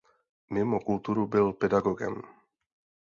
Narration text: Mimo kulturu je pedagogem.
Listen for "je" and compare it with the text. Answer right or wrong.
wrong